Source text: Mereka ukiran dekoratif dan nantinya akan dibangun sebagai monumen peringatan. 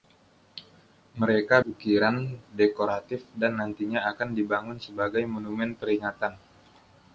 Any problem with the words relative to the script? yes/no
no